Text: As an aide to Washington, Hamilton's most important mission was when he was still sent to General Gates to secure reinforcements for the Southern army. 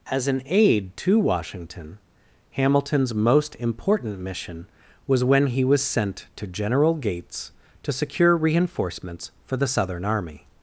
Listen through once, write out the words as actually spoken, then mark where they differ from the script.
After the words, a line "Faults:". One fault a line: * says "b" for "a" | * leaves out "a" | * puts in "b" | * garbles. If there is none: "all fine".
As an aide to Washington, Hamilton's most important mission was when he was sent to General Gates to secure reinforcements for the Southern army.
Faults:
* leaves out "still"